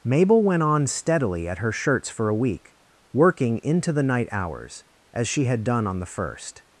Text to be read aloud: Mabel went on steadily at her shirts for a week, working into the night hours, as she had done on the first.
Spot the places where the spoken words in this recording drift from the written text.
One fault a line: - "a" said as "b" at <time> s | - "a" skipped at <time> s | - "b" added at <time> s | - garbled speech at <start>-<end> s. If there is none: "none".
none